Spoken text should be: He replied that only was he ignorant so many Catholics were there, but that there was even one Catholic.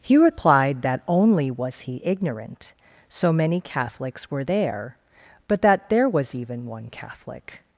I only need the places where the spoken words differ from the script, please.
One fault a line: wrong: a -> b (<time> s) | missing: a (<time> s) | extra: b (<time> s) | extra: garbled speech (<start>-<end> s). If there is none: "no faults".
no faults